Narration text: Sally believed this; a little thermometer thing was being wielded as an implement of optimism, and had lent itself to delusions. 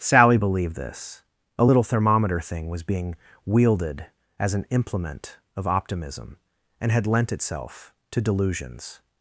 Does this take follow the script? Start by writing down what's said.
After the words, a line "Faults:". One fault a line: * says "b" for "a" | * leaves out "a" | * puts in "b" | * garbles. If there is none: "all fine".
Sally believed this; a little thermometer thing was being wielded as an implement of optimism, and had lent itself to delusions.
Faults:
all fine